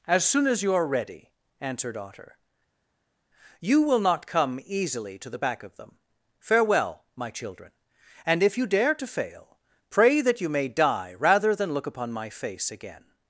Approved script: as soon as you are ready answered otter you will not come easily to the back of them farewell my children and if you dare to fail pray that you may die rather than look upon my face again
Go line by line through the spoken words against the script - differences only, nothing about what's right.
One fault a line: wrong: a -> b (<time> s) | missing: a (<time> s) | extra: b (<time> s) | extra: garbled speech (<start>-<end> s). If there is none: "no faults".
no faults